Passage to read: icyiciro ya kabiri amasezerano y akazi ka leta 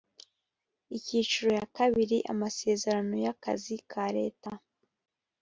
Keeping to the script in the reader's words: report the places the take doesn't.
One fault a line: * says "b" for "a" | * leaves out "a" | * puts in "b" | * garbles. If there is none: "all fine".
all fine